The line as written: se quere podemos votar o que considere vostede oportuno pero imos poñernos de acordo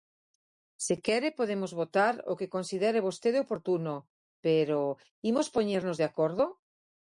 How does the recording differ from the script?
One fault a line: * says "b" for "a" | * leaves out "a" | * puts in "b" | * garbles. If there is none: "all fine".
all fine